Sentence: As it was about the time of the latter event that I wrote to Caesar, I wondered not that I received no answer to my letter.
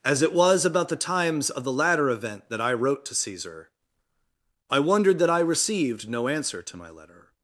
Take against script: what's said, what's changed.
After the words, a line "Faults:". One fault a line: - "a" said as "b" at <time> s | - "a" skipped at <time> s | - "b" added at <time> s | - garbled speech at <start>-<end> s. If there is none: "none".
As it was about the times of the latter event that I wrote to Caesar, I wondered that I received no answer to my letter.
Faults:
- "time" said as "times" at 0.9 s
- "not" skipped at 5.2 s